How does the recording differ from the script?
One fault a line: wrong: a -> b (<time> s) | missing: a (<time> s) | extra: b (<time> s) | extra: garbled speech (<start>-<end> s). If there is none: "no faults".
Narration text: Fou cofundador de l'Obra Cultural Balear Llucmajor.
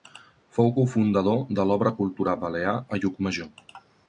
extra: a (2.8 s)